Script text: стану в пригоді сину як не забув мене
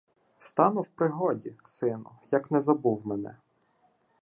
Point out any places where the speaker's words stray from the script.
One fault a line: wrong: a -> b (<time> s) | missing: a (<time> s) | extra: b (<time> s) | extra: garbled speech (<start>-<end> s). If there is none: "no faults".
no faults